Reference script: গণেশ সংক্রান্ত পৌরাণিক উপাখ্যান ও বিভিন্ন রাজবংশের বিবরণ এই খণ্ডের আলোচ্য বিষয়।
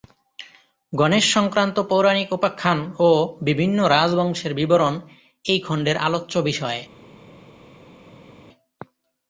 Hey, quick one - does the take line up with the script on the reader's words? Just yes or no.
yes